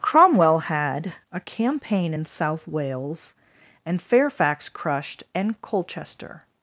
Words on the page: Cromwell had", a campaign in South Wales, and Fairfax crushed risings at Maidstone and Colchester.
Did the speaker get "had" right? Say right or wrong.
right